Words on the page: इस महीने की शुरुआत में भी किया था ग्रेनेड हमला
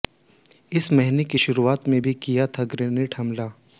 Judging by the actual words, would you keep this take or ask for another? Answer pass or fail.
pass